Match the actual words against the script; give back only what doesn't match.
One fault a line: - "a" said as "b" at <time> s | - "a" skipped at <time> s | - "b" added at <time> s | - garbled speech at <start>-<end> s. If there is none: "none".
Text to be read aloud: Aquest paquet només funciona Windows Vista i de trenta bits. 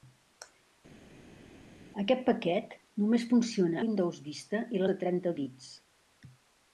none